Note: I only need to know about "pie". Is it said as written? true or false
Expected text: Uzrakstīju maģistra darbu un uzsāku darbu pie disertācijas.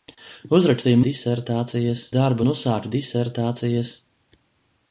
false